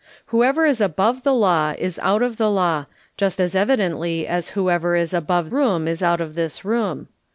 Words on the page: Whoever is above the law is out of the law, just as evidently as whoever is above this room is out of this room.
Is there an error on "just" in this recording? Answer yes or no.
no